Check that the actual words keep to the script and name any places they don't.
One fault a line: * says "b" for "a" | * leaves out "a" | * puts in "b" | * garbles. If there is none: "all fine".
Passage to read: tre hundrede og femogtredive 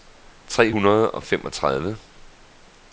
all fine